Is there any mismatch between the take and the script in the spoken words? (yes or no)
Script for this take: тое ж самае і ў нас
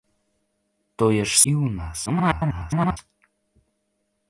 yes